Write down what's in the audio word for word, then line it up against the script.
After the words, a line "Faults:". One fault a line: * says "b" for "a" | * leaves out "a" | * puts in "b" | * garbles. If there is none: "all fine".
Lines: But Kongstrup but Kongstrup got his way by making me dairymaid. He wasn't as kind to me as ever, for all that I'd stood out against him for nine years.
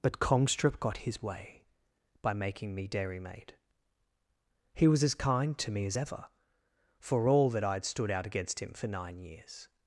But Kongstrup got his way by making me dairymaid. He was as kind to me as ever, for all that I'd stood out against him for nine years.
Faults:
* leaves out "but Kongstrup"
* says "was" for "wasn't"